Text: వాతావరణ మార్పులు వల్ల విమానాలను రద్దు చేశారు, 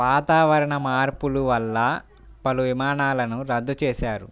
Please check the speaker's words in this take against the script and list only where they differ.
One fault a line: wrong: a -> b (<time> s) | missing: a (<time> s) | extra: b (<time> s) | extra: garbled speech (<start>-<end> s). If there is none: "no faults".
extra: పలు (2.5 s)